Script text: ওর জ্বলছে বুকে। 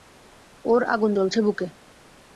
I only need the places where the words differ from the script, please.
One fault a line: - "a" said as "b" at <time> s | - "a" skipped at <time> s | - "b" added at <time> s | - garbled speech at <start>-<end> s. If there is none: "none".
- "আগুন" added at 0.9 s